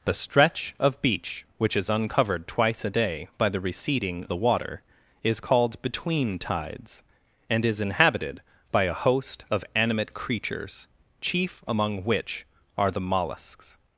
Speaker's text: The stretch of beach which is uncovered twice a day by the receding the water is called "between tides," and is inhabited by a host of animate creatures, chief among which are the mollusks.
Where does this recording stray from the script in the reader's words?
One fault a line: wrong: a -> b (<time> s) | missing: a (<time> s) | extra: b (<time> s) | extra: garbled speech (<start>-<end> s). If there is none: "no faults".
no faults